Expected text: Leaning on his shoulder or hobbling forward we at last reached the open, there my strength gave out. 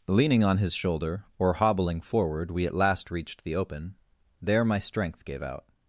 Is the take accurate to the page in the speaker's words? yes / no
yes